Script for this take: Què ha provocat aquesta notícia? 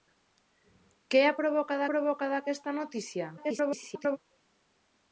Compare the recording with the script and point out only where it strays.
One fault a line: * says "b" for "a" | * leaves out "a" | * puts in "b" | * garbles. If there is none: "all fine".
* puts in "provocat"
* garbles